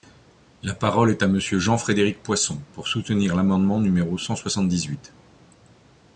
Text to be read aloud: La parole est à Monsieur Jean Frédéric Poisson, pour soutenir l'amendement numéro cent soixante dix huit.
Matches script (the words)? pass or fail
pass